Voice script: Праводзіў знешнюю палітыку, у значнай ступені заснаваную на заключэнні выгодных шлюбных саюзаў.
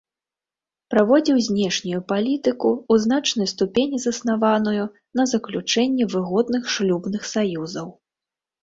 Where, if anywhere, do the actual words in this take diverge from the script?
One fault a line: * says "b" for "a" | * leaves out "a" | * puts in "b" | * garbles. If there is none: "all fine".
all fine